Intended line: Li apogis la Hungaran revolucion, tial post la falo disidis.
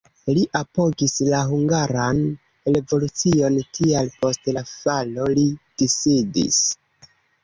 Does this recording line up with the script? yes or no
no